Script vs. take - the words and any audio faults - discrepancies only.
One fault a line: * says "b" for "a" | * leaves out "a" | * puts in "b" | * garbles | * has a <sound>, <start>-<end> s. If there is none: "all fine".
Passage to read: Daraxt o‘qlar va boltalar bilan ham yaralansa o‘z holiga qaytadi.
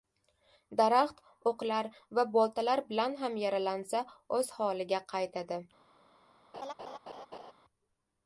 * has a laugh, 6.5-7.5 s